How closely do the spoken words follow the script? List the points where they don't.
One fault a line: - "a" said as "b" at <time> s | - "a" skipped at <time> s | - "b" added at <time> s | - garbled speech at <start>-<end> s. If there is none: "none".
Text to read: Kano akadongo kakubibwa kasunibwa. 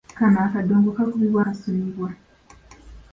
none